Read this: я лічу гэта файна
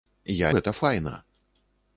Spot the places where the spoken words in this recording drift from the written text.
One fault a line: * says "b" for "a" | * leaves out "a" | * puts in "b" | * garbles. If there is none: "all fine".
* leaves out "лічу"